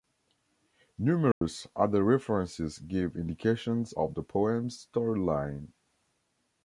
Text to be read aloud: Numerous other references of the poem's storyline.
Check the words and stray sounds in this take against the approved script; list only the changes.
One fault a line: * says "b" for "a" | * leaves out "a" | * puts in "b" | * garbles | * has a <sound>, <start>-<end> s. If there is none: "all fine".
* has a dropout, 1.3-1.4 s
* puts in "give indications"